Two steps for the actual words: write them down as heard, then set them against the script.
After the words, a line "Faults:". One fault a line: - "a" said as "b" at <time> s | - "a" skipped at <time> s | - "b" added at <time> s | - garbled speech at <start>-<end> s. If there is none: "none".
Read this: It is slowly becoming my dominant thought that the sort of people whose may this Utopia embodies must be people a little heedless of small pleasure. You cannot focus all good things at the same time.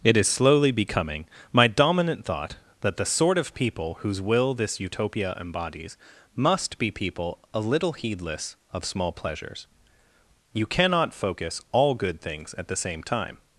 It is slowly becoming my dominant thought that the sort of people whose will this Utopia embodies must be people a little heedless of small pleasures. You cannot focus all good things at the same time.
Faults:
- "may" said as "will" at 4.2 s
- "pleasure" said as "pleasures" at 9.1 s